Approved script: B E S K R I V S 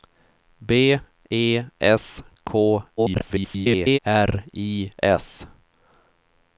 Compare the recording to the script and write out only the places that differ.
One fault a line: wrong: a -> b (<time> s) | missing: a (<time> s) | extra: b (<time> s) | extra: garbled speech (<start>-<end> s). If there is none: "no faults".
extra: garbled speech (3.0-4.0 s)
missing: V (4.9 s)